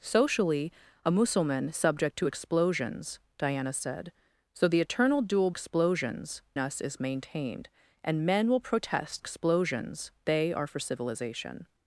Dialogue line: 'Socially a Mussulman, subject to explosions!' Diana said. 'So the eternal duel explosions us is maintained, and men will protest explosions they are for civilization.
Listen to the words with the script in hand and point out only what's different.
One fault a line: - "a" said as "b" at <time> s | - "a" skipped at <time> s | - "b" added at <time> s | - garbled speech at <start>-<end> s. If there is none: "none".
none